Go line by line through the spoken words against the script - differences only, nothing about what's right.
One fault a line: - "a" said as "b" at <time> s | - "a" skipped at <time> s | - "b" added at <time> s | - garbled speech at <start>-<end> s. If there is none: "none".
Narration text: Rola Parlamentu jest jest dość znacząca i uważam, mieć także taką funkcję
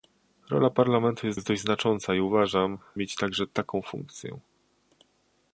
none